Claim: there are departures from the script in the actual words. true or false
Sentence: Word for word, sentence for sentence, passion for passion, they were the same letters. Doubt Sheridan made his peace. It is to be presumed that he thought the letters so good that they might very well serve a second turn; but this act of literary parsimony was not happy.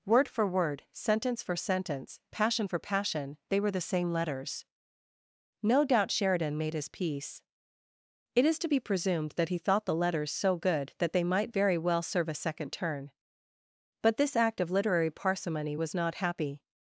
true